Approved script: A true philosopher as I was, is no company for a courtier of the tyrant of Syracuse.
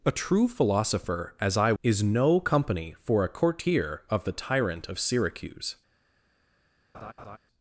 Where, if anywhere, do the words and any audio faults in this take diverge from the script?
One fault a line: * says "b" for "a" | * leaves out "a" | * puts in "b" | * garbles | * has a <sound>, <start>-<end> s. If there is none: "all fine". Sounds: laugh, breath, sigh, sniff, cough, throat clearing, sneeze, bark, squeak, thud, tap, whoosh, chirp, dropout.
* leaves out "was"
* has a laugh, 6.9-7.4 s